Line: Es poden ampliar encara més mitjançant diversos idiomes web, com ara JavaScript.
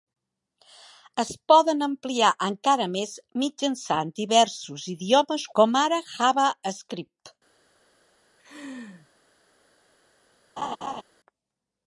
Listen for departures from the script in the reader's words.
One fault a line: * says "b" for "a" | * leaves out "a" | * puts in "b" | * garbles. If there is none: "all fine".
* leaves out "web"